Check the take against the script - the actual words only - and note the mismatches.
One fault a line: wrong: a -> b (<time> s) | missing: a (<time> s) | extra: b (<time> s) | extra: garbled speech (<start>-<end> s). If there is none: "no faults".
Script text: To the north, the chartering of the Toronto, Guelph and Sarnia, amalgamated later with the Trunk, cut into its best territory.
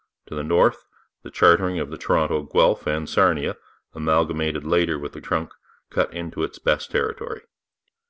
no faults